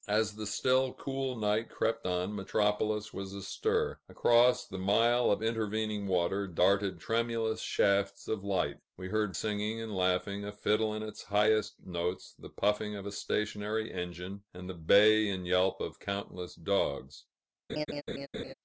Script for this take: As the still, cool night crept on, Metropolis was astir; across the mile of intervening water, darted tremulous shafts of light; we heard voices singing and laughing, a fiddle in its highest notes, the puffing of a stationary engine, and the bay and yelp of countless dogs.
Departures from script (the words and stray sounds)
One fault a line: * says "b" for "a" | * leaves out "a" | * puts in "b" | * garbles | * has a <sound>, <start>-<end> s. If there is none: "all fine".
* leaves out "voices"
* has a laugh, 17.7-18.5 s